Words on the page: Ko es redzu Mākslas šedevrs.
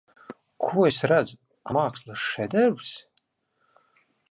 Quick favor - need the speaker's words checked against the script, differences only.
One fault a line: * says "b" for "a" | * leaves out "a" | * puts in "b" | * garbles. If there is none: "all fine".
all fine